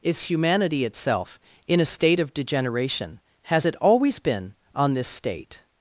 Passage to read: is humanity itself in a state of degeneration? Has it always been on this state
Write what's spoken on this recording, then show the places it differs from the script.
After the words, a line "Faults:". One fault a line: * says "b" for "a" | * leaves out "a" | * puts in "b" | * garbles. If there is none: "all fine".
is humanity itself in a state of degeneration? Has it always been on this state
Faults:
all fine